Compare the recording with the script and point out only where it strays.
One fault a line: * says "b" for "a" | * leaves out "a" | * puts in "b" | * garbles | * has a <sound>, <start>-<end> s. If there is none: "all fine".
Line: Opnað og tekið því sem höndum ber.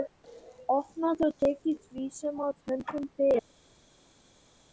* puts in "að"